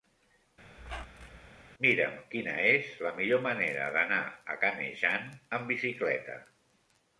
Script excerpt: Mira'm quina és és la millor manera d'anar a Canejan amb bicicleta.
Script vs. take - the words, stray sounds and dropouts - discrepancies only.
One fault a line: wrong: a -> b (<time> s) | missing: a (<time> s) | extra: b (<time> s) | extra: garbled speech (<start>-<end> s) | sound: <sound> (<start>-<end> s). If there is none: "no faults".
sound: squeak (0.8-1.5 s)
missing: és (2.9 s)